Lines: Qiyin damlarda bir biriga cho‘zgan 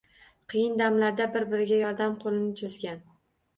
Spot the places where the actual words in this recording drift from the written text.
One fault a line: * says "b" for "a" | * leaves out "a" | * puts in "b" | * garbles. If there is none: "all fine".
* puts in "yordam qo‘lini"